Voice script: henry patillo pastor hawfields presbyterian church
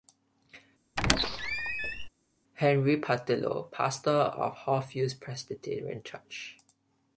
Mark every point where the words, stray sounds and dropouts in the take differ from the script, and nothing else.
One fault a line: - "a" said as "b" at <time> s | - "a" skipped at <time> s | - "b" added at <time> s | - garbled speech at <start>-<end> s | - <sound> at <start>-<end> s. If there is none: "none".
- squeak at 1.0-2.1 s
- "of" added at 4.1 s